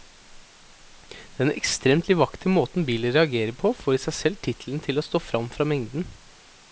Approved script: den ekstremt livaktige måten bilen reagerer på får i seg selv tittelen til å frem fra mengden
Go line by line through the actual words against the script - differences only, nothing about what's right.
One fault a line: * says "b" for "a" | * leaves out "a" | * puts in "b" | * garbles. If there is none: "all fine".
* puts in "stå"